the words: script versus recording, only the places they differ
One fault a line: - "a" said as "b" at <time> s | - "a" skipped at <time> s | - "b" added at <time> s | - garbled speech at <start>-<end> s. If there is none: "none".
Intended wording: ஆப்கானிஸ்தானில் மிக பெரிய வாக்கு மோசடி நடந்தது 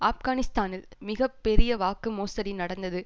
none